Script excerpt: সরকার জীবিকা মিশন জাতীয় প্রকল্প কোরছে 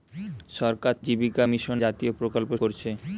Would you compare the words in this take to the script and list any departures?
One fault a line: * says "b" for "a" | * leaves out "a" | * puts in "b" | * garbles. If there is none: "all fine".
all fine